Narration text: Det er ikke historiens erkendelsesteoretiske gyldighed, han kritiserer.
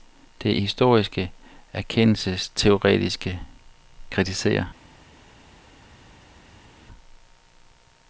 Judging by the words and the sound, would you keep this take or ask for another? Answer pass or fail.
fail